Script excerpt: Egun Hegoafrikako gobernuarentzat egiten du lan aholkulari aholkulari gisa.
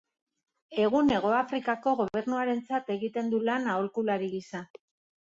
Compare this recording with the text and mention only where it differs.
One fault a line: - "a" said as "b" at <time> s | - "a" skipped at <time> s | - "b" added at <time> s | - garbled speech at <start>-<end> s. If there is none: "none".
- "aholkulari" skipped at 4.3 s